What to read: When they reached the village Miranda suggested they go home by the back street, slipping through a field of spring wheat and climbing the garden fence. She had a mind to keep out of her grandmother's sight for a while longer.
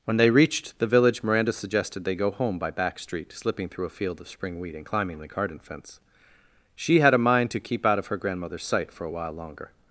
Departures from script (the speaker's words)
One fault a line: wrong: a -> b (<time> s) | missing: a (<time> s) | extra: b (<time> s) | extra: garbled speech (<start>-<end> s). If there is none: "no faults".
missing: the (2.7 s)